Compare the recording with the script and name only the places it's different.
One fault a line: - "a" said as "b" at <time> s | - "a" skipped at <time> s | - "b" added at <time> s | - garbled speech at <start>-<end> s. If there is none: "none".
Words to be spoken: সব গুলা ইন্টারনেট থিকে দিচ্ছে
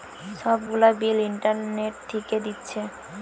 - "বিল" added at 1.0 s